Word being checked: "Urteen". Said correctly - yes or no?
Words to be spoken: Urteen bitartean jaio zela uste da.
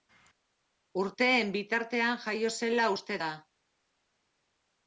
yes